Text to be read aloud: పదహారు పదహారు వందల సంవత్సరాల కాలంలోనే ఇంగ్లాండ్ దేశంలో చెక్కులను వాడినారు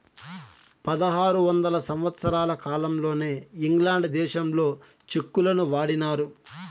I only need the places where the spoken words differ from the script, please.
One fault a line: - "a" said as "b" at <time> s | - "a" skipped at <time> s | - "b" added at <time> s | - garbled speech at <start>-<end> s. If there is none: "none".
- "పదహారు" skipped at 1.4 s